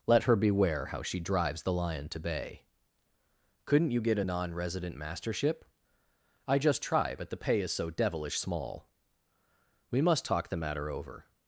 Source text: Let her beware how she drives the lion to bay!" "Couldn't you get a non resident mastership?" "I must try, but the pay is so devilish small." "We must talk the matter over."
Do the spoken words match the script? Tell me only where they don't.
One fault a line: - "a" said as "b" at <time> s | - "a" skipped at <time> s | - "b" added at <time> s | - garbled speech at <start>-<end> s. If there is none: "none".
- "must" said as "just" at 6.6 s